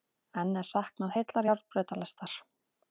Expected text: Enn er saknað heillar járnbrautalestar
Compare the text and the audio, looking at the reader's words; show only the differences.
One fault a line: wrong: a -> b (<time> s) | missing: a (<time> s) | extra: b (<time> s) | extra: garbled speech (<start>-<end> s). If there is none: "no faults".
no faults